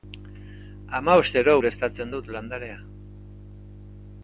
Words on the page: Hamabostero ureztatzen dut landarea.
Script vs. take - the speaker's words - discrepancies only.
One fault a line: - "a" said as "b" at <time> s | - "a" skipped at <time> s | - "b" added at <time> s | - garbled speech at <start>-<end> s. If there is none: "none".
none